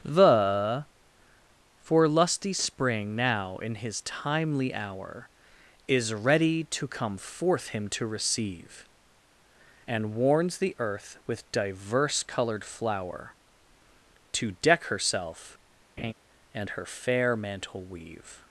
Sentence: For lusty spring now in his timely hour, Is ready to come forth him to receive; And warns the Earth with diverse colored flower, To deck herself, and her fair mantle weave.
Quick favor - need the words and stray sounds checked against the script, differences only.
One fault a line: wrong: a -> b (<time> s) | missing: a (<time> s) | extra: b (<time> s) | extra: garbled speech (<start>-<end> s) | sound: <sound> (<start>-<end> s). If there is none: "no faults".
extra: the (0.0 s)
sound: laugh (16.0-16.1 s)